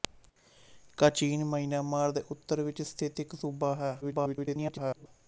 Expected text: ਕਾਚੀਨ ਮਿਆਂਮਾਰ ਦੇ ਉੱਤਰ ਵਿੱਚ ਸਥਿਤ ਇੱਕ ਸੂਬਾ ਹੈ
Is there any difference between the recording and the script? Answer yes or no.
yes